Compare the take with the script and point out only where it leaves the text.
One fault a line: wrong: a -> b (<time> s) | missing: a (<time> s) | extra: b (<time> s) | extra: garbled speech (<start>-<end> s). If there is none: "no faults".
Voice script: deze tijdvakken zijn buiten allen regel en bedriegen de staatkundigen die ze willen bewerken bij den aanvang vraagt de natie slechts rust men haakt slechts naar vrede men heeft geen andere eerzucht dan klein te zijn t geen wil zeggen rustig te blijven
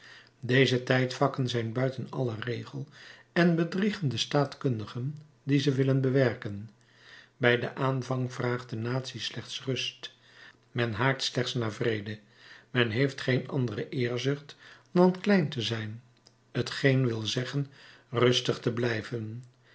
no faults